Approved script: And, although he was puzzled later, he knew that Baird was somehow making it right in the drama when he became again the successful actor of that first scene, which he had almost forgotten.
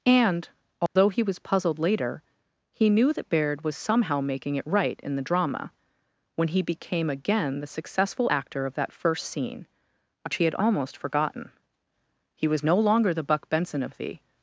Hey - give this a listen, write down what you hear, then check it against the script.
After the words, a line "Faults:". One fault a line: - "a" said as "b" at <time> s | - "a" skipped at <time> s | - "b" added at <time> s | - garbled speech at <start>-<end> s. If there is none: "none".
And, although he was puzzled later, he knew that Baird was somehow making it right in the drama when he became again the successful actor of that first scene, which he had almost forgotten. He was no longer the Buck Benson of the
Faults:
- "He was no longer the Buck Benson of the" added at 12.4 s